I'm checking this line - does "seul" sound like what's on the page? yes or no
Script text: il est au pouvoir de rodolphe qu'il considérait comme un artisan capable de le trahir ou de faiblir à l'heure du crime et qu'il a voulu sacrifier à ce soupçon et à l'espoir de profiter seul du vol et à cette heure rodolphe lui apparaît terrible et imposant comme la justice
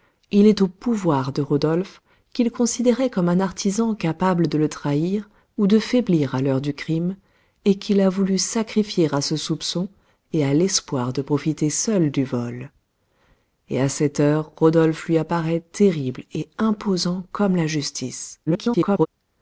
yes